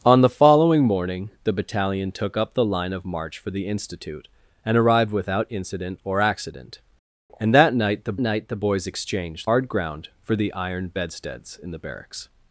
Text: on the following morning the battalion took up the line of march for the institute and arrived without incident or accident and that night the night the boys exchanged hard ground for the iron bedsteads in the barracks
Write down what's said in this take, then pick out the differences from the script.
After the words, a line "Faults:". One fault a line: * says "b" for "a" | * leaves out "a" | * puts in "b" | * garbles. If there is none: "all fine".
on the following morning the battalion took up the line of march for the institute and arrived without incident or accident and that night the night the boys exchanged hard ground for the iron bedsteads in the barracks
Faults:
all fine